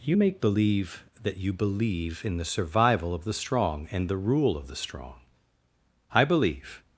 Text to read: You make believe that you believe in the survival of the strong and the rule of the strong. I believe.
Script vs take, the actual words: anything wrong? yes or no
no